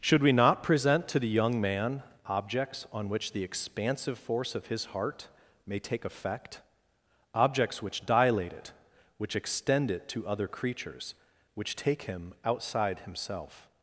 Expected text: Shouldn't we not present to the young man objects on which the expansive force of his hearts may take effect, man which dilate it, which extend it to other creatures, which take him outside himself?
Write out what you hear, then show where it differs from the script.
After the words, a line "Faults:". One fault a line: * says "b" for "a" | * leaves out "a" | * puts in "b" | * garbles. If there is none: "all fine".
Should we not present to the young man objects on which the expansive force of his heart may take effect, objects which dilate it, which extend it to other creatures, which take him outside himself?
Faults:
* says "Should" for "Shouldn't"
* says "heart" for "hearts"
* says "objects" for "man"